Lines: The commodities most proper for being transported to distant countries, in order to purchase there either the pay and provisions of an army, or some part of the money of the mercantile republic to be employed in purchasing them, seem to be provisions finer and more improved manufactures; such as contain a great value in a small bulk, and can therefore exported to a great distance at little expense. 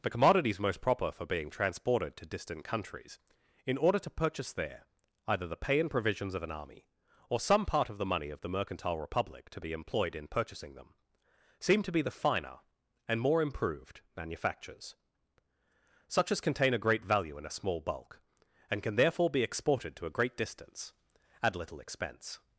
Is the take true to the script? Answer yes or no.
no